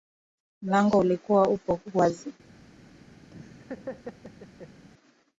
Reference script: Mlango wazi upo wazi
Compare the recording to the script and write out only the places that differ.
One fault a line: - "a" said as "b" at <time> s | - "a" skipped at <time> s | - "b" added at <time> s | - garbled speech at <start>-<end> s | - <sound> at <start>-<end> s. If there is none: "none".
- "wazi" said as "ulikuwa" at 1.0 s
- laugh at 3.3-4.8 s